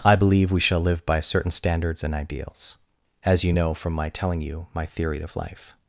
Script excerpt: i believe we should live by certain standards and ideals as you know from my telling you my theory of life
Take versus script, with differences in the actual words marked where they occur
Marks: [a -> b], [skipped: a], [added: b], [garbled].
i believe we [should -> shall] live by certain standards and ideals as you know from my telling you my theory of life